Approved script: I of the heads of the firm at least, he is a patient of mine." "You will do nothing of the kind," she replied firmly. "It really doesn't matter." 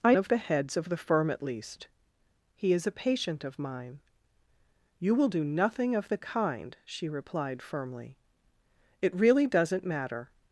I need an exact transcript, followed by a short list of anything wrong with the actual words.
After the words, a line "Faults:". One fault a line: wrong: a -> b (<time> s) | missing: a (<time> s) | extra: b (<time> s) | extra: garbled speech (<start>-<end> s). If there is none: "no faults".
I of the heads of the firm at least, he is a patient of mine." "You will do nothing of the kind," she replied firmly. "It really doesn't matter."
Faults:
no faults